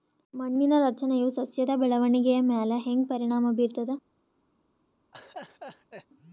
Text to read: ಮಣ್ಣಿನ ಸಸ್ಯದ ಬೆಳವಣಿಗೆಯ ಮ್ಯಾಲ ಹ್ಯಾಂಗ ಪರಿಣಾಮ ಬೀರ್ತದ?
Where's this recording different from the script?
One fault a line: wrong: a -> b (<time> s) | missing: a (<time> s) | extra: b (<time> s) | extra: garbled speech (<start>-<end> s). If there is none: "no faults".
extra: ರಚನೆಯು (0.8 s)